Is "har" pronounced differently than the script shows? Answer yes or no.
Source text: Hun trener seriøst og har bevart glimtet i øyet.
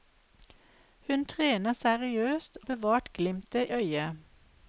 yes